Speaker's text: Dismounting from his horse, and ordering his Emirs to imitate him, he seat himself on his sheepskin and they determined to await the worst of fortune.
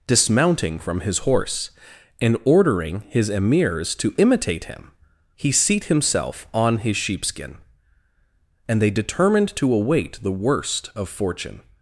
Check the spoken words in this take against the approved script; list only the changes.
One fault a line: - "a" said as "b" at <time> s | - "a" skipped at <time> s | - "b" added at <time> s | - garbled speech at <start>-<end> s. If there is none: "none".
none